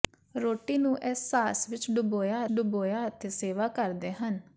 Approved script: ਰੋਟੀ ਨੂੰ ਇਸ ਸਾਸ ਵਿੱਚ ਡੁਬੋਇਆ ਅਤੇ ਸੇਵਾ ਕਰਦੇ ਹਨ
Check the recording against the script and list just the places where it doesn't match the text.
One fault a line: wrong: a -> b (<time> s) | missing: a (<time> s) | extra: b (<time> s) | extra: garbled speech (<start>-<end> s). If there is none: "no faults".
extra: ਡੁਬੋਇਆ (2.5 s)